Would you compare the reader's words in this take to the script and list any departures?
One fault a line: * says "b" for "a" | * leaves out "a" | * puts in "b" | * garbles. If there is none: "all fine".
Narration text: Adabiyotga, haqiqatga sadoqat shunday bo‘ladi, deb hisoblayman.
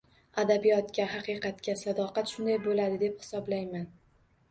all fine